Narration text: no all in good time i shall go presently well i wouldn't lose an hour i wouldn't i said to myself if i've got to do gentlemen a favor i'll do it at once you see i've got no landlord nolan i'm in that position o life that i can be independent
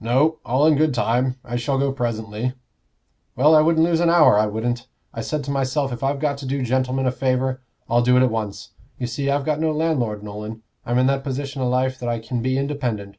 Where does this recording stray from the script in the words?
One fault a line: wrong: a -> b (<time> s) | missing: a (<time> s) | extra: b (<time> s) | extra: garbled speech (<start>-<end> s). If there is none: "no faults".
no faults